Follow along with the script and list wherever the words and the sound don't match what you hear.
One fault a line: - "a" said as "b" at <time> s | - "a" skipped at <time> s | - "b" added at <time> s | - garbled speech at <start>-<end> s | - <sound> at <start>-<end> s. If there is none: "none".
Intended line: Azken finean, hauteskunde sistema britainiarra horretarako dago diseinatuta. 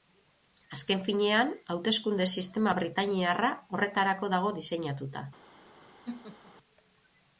- laugh at 6.0-6.5 s